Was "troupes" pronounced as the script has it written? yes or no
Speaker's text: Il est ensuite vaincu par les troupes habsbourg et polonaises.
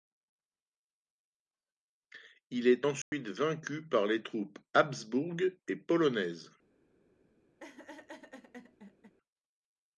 yes